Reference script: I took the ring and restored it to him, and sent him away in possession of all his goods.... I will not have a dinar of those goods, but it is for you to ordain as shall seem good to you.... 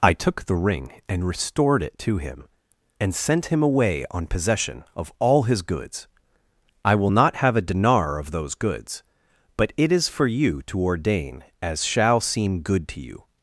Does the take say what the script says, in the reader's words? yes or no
no